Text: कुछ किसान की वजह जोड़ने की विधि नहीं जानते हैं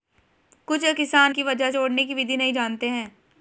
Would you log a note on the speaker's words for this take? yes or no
no